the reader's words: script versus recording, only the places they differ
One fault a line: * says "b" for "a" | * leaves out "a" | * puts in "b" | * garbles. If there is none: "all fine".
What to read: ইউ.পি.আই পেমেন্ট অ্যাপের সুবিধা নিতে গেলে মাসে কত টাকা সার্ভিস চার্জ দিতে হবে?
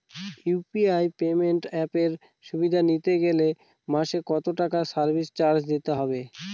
all fine